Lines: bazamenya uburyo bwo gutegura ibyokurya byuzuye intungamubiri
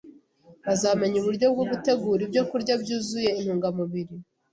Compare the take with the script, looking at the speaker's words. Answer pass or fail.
pass